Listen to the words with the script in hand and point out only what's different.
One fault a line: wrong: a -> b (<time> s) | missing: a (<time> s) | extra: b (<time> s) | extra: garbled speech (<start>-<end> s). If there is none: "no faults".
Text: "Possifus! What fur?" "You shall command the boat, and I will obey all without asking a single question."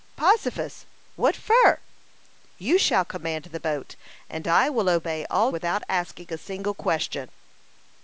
no faults